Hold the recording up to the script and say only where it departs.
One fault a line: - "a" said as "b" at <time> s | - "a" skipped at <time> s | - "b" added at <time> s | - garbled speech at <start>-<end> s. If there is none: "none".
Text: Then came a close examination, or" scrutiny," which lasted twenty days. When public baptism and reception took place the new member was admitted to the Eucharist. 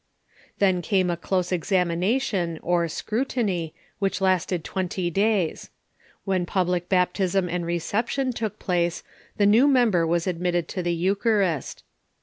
none